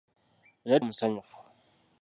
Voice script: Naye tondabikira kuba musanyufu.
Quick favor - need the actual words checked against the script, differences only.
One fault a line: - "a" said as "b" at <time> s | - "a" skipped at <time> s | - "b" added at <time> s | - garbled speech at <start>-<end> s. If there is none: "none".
- "tondabikira kuba" skipped at 0.8 s